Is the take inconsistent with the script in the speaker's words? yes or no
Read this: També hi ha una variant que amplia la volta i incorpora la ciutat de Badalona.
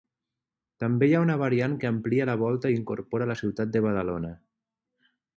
no